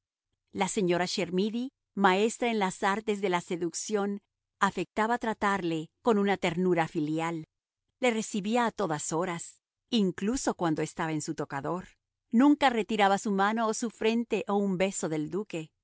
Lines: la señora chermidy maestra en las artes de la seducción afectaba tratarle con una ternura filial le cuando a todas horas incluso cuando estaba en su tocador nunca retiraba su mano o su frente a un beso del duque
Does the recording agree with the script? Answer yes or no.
no